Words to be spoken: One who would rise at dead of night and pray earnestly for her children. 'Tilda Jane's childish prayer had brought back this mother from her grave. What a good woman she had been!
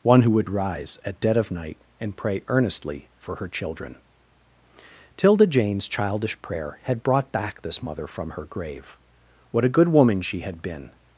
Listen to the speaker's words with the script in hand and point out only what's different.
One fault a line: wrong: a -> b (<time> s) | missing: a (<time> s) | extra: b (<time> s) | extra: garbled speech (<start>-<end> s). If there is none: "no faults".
no faults